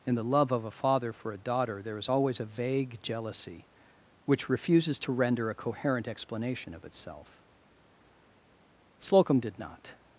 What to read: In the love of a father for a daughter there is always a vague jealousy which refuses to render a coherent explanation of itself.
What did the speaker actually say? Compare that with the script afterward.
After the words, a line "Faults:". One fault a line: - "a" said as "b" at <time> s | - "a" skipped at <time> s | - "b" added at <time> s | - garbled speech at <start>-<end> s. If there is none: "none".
In the love of a father for a daughter there is always a vague jealousy which refuses to render a coherent explanation of itself. Slocum did not
Faults:
- "Slocum did not" added at 9.0 s